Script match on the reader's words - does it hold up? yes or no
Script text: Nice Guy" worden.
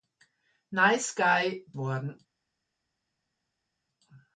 yes